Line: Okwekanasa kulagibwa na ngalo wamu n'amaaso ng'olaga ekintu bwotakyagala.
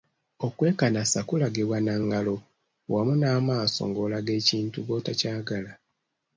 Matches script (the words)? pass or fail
pass